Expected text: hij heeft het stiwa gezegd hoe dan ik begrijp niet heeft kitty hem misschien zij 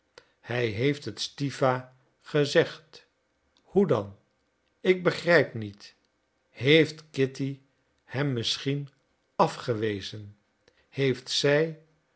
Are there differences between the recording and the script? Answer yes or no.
yes